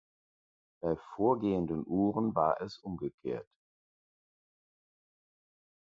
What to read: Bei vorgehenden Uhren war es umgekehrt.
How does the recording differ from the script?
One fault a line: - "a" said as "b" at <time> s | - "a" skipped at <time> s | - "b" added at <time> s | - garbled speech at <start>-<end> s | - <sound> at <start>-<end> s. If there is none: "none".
none